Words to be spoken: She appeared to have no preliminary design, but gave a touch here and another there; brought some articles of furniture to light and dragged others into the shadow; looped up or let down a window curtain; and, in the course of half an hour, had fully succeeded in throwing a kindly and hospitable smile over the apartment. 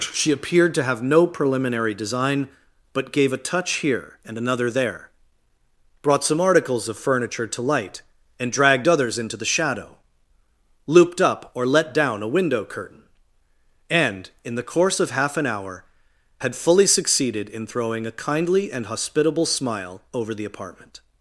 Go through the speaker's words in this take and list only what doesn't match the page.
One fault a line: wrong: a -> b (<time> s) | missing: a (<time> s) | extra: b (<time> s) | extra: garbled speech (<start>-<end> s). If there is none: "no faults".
no faults